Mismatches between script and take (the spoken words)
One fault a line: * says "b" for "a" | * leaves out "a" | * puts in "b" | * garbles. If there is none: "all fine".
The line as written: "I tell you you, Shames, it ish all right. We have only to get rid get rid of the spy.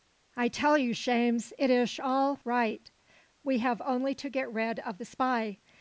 * leaves out "you"
* leaves out "get rid"